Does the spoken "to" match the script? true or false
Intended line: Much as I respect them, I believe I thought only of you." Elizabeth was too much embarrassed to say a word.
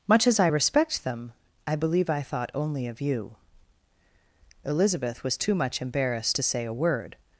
true